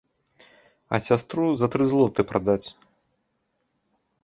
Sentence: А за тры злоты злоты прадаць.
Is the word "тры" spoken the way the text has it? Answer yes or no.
yes